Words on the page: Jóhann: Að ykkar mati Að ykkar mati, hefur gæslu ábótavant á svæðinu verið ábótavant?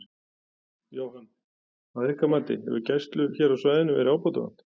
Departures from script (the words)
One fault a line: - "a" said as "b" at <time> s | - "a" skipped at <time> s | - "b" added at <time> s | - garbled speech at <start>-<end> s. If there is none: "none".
- "Að ykkar mati" skipped at 2.6 s
- "ábótavant" said as "hér" at 3.4 s